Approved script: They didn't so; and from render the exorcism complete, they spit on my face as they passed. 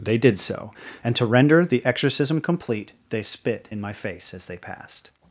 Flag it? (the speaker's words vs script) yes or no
yes